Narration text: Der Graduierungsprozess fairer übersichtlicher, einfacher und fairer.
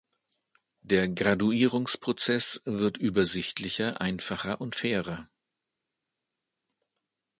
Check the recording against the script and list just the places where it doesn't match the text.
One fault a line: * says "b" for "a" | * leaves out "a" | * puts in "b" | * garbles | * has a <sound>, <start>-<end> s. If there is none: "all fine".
* says "wird" for "fairer"